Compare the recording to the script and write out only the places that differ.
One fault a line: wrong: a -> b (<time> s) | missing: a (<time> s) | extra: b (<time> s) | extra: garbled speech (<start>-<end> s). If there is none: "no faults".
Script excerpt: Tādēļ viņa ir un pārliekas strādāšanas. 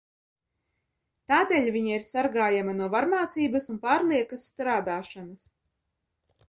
extra: sargājama no varmācības (2.1 s)